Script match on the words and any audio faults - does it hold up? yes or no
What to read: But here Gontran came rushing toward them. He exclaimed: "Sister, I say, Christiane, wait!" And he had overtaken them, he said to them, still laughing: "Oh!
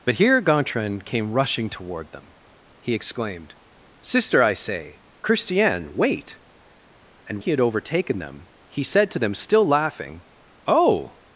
yes